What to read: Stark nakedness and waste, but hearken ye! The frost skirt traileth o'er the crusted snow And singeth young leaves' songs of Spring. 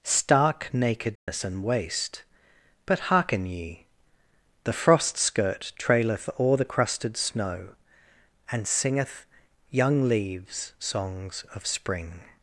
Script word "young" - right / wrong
right